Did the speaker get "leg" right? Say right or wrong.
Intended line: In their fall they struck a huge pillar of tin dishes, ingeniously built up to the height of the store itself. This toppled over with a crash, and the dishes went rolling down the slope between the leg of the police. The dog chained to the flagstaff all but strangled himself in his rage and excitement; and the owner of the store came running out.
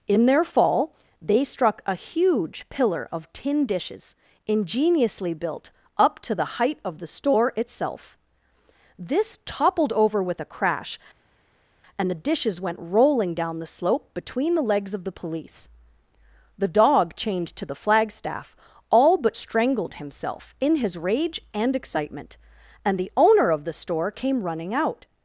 wrong